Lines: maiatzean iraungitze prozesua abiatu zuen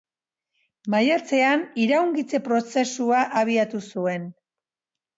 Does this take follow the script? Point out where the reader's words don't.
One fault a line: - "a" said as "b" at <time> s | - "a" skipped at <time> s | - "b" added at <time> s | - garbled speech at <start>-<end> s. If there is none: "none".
none